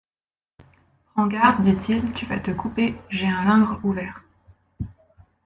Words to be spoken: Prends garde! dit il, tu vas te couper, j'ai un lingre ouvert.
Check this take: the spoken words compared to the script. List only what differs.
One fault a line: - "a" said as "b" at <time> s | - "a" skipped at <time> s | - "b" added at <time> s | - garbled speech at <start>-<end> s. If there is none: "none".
none